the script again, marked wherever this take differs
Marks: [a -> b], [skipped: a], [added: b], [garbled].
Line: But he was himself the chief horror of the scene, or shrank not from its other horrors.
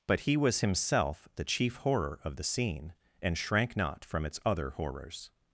But he was himself the chief horror of the scene, [or -> and] shrank not from its other horrors.